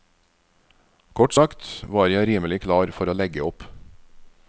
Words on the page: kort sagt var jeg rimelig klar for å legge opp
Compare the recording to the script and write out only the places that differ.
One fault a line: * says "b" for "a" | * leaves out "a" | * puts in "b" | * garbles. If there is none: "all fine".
all fine